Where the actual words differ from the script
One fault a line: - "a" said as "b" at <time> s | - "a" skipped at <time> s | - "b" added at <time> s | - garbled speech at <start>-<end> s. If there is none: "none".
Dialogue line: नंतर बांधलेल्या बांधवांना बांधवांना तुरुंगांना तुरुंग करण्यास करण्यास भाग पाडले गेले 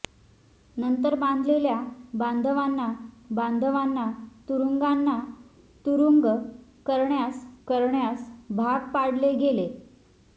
none